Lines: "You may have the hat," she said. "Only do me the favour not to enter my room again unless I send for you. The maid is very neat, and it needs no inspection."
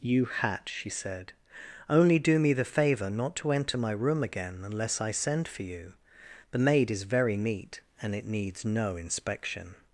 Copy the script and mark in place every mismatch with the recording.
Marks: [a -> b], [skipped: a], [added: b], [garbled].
"You [skipped: may have the] hat," she said. "Only do me the favour not to enter my room again unless I send for you. The maid is very neat, and it needs no inspection."